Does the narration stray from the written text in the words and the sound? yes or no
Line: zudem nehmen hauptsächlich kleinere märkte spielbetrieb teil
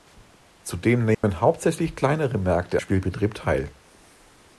yes